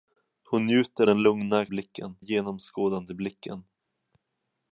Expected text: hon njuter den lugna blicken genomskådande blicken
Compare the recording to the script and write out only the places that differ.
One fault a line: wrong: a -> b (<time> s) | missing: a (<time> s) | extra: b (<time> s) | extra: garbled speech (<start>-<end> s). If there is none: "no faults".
no faults